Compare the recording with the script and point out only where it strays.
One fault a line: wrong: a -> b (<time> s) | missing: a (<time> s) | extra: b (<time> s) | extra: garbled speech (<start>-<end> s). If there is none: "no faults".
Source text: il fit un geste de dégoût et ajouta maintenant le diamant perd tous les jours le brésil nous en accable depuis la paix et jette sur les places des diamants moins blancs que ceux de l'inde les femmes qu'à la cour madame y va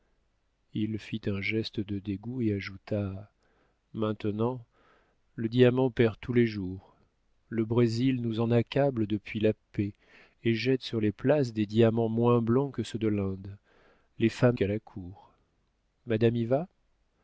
no faults